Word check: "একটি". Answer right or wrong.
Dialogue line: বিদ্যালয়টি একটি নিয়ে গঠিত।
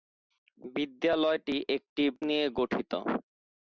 right